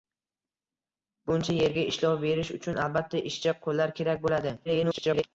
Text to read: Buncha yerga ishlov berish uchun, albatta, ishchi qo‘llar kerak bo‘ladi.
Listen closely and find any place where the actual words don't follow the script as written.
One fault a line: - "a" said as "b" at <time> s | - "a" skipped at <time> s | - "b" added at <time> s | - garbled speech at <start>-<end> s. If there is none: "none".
- garbled speech at 4.6-5.2 s